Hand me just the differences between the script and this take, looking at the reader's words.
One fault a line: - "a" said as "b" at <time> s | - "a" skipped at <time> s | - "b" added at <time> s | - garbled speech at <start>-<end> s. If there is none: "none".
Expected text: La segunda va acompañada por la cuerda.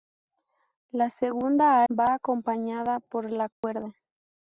none